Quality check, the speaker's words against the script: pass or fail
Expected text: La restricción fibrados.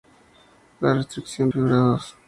pass